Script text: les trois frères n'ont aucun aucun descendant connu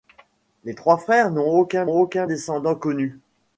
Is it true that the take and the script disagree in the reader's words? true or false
false